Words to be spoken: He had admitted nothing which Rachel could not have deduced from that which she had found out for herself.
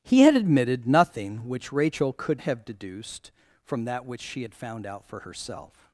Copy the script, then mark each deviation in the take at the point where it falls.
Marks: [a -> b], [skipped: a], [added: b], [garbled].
He had admitted nothing which Rachel could [skipped: not] have deduced from that which she had found out for herself.